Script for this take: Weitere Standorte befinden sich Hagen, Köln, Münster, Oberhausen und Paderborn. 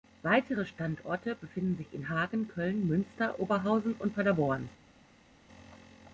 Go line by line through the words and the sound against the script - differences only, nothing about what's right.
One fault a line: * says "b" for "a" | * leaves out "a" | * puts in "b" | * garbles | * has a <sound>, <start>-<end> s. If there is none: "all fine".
* puts in "in"